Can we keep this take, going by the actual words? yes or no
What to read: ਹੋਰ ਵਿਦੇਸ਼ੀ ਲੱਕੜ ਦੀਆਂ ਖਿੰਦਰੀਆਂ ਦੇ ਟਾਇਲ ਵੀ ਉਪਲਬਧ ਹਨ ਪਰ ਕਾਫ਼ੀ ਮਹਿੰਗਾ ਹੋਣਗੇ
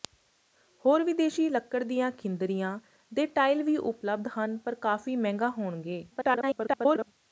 no